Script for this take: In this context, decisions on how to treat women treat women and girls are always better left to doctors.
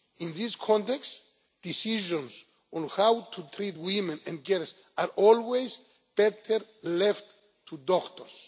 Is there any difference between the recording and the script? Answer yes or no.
yes